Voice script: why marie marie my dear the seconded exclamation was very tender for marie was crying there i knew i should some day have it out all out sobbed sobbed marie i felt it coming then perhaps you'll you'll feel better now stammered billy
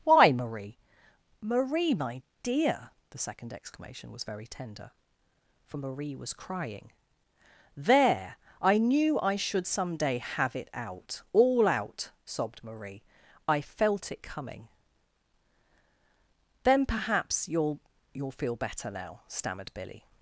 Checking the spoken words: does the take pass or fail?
fail